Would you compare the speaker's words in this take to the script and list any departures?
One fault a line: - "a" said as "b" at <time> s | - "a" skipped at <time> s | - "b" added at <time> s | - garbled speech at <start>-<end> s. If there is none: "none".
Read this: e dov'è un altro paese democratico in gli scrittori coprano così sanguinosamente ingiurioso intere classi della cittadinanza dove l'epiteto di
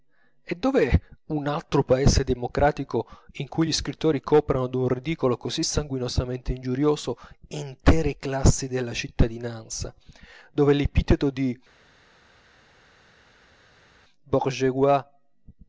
- "cui" added at 3.5 s
- "d'un ridicolo" added at 4.7 s